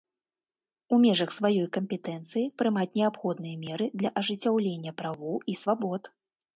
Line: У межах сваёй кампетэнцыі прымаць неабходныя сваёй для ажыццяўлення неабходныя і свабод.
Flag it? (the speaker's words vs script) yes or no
yes